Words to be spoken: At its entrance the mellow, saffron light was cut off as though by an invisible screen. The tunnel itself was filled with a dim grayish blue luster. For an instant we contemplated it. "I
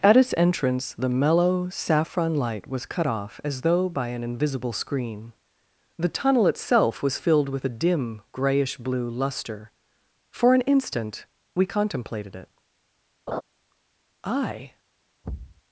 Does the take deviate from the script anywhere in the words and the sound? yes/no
yes